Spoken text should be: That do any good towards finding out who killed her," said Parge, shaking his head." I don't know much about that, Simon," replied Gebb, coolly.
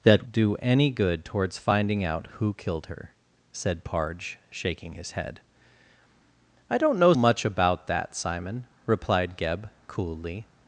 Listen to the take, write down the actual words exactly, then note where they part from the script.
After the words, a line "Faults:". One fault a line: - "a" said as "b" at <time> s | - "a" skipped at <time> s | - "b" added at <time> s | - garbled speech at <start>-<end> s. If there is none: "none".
That do any good towards finding out who killed her," said Parge, shaking his head." I don't know much about that, Simon," replied Gebb, coolly.
Faults:
none